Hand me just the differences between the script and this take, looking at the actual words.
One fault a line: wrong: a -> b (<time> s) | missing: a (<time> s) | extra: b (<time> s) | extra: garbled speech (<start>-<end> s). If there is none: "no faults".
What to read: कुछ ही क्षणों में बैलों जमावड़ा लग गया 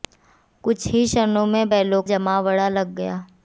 no faults